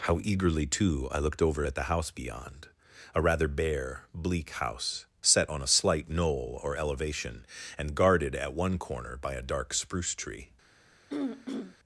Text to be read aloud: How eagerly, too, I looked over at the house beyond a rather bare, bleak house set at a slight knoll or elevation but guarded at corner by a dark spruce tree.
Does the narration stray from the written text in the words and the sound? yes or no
yes